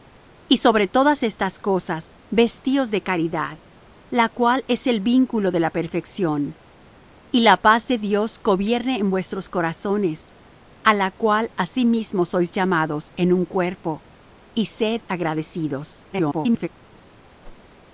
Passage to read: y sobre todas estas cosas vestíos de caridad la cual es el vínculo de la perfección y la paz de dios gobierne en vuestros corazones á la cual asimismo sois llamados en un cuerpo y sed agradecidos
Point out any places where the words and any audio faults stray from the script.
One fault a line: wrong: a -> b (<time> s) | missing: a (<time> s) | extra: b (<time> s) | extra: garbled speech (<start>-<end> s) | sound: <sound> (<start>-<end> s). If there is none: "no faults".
extra: garbled speech (16.1-16.7 s)
sound: whoosh (17.4-17.7 s)